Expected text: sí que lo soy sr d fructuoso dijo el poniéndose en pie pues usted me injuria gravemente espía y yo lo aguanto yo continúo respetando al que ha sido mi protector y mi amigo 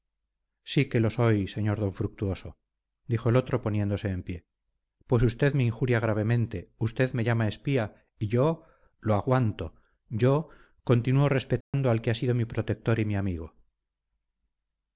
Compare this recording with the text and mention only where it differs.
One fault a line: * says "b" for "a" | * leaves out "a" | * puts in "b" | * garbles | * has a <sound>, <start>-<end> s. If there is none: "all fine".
* puts in "otro"
* puts in "usted me llama"
* has a dropout, 11.6-11.7 s